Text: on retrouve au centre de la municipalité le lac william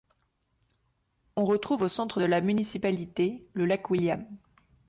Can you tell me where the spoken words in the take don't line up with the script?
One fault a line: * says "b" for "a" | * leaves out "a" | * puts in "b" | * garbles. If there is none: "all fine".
all fine